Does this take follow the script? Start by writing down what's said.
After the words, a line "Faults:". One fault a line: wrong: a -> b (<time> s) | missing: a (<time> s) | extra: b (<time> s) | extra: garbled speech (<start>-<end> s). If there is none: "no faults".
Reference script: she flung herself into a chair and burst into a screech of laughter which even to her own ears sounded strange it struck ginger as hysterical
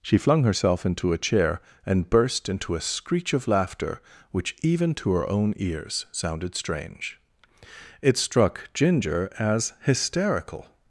she flung herself into a chair and burst into a screech of laughter which even to her own ears sounded strange it struck ginger as hysterical
Faults:
no faults